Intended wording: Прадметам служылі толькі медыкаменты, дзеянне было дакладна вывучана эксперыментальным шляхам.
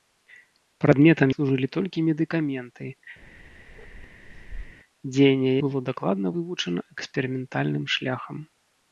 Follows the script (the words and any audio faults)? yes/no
no